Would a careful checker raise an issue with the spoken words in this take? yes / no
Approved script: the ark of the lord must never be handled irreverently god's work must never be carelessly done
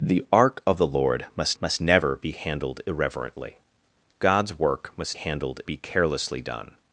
yes